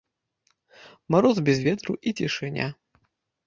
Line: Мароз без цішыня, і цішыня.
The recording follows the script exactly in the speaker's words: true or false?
false